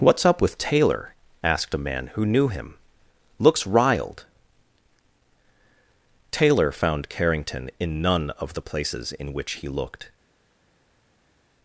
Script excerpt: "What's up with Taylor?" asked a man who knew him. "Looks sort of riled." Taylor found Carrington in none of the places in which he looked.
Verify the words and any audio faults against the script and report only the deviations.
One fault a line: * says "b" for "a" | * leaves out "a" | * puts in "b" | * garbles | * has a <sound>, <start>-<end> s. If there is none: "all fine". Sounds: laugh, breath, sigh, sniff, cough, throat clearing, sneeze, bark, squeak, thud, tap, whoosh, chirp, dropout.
* leaves out "sort of"